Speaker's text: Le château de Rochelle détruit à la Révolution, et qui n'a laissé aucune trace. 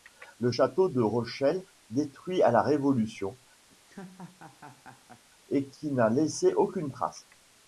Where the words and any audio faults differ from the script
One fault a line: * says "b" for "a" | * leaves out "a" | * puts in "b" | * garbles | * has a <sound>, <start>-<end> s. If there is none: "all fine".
* has a laugh, 3.7-5.2 s